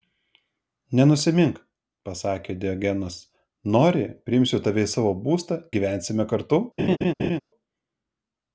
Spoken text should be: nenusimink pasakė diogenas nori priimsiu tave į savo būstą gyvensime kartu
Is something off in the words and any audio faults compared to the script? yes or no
yes